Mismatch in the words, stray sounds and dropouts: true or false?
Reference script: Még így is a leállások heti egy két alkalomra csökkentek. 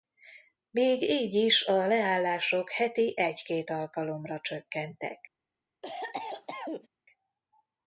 true